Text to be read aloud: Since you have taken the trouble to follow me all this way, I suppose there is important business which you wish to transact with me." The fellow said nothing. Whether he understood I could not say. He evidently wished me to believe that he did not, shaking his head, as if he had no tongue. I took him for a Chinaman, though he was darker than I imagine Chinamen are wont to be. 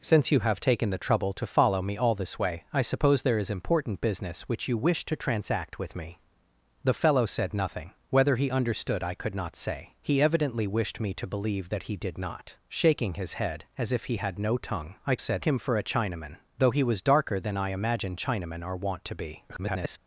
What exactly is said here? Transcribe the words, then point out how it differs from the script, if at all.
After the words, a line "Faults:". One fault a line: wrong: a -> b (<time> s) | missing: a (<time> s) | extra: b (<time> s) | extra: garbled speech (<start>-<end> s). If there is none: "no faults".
Since you have taken the trouble to follow me all this way, I suppose there is important business which you wish to transact with me." The fellow said nothing. Whether he understood I could not say. He evidently wished me to believe that he did not, shaking his head, as if he had no tongue. I said him for a Chinaman, though he was darker than I imagine Chinamen are wont to be. [garbled]
Faults:
wrong: took -> said (15.2 s)
extra: garbled speech (19.5-20.0 s)